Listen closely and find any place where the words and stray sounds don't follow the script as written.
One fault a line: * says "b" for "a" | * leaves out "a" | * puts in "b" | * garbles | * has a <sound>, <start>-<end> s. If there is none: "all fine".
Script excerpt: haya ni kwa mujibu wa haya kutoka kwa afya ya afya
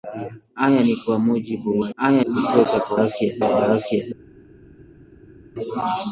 all fine